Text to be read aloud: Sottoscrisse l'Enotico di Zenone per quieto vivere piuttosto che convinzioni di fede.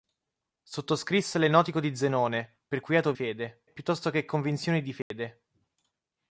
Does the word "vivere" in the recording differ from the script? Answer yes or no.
yes